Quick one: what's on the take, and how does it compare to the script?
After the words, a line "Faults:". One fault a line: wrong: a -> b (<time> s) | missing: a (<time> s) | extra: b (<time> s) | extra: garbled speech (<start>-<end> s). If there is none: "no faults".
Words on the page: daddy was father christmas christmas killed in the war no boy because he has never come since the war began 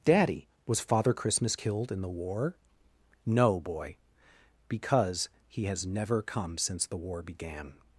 daddy was father christmas killed in the war no boy because he has never come since the war began
Faults:
missing: christmas (1.6 s)